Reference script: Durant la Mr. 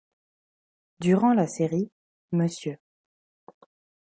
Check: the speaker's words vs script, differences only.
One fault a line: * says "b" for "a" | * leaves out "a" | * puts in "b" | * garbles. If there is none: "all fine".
* puts in "série"